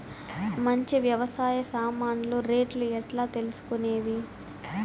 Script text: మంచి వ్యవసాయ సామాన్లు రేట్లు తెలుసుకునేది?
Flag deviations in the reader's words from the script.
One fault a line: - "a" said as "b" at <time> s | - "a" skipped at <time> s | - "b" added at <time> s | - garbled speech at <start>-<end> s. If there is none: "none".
- "ఎట్లా" added at 3.0 s